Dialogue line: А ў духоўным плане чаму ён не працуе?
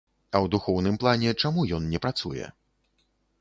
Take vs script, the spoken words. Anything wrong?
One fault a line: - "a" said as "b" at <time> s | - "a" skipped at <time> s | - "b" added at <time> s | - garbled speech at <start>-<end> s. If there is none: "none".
none